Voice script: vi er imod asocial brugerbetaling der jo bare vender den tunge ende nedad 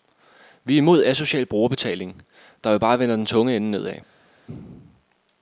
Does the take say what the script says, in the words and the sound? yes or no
yes